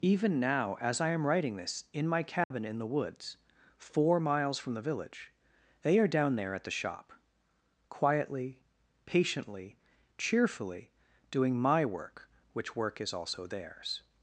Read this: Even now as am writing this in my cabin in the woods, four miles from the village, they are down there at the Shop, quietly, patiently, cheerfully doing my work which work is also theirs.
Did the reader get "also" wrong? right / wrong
right